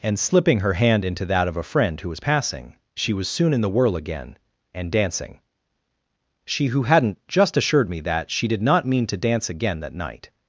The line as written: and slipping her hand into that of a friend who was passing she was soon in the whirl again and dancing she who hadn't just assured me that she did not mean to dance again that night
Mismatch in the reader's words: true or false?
false